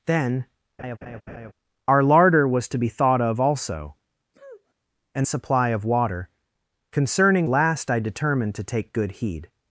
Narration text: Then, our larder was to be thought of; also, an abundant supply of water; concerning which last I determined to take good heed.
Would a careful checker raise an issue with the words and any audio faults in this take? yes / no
yes